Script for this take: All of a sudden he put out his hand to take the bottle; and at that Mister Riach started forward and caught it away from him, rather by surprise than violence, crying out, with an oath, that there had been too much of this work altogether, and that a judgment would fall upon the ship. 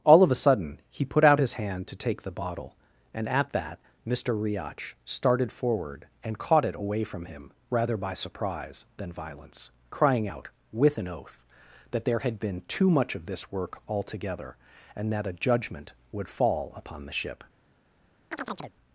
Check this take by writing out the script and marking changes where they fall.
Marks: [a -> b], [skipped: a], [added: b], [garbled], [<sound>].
All of a sudden he put out his hand to take the bottle; and at that Mister Riach started forward and caught it away from him, rather by surprise than violence, crying out, with an oath, that there had been too much of this work altogether, and that a judgment would fall upon the ship. [chirp]